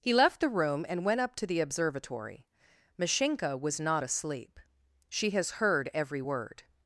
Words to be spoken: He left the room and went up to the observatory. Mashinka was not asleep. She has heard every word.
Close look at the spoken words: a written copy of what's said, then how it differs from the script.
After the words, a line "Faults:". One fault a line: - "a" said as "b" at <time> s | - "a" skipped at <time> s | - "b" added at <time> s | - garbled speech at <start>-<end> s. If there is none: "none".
He left the room and went up to the observatory. Mashinka was not asleep. She has heard every word.
Faults:
none